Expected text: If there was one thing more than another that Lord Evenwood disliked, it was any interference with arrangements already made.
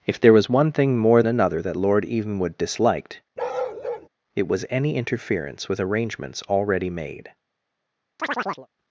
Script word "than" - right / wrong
wrong